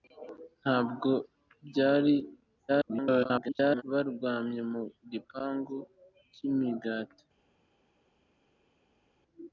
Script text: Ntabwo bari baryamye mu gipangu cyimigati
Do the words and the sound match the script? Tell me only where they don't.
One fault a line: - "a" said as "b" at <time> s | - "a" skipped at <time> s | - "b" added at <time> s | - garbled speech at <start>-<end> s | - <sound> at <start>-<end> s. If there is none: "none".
- garbled speech at 2.7-3.8 s